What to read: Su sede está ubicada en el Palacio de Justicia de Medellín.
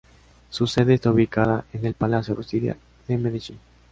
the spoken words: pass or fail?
fail